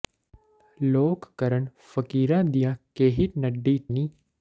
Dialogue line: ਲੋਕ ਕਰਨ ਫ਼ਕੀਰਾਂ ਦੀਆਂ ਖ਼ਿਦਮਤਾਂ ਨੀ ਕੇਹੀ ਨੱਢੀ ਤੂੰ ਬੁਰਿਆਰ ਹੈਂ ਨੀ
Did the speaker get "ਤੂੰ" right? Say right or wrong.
wrong